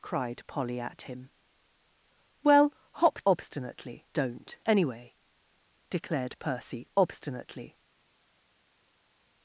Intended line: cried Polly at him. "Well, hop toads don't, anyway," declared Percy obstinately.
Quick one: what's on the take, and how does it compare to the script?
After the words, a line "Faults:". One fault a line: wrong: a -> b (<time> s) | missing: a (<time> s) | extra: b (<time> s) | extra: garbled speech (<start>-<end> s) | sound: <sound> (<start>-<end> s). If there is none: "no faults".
cried Polly at him. "Well, hop obstinately don't, anyway," declared Percy obstinately.
Faults:
wrong: toads -> obstinately (3.3 s)